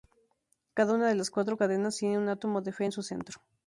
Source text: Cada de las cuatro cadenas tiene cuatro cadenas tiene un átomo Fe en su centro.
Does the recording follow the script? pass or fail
fail